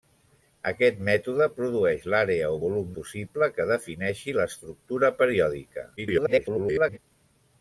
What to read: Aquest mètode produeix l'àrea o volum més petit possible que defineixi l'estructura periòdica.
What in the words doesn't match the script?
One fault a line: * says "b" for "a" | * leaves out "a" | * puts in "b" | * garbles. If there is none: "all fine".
* leaves out "més petit"
* garbles